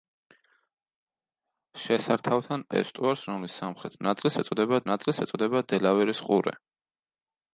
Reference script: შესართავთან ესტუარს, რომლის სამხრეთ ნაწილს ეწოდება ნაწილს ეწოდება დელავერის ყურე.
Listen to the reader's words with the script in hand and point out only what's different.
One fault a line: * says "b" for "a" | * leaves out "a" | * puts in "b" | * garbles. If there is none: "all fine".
all fine